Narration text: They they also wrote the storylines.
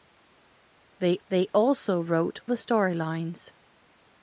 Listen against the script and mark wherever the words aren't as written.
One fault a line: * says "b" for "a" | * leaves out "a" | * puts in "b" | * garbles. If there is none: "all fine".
all fine